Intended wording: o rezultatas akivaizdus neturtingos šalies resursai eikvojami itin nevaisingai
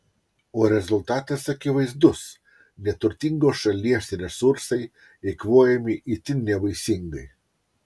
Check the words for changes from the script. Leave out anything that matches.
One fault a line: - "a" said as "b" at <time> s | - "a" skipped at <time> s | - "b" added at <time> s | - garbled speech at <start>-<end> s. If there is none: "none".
none